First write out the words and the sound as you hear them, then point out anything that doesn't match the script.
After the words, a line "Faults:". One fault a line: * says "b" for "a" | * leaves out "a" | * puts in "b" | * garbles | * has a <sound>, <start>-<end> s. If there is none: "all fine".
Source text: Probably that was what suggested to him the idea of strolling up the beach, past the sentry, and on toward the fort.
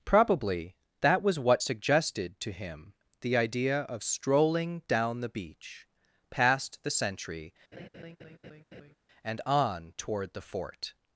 Probably that was what suggested to him the idea of strolling down the beach, past the sentry, and on toward the fort.
Faults:
* says "down" for "up"
* has a laugh, 7.7-9.0 s